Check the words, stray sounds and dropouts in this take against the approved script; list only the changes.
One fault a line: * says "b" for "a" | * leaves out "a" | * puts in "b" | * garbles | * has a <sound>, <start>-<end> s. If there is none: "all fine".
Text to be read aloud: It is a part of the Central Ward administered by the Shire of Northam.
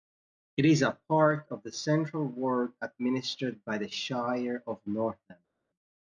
all fine